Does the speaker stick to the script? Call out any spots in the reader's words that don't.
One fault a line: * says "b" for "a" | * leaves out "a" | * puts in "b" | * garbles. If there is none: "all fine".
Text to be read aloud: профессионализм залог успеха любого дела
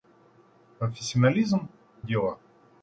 * leaves out "залог успеха любого"